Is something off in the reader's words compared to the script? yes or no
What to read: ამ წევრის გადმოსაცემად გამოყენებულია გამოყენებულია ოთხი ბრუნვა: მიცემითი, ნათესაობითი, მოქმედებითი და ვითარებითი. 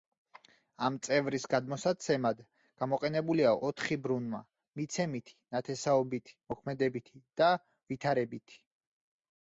yes